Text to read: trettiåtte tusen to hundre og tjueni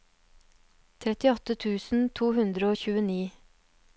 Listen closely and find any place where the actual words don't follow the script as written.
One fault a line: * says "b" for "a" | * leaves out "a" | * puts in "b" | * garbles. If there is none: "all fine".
all fine